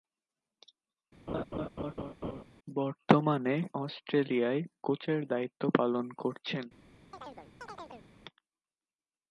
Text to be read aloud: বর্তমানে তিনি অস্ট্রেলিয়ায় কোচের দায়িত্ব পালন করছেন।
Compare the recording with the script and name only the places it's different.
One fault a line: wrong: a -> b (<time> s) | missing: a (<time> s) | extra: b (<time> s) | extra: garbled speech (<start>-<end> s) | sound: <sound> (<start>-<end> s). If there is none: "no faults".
sound: laugh (1.3-2.4 s)
missing: তিনি (3.5 s)
sound: chirp (7.1-8.1 s)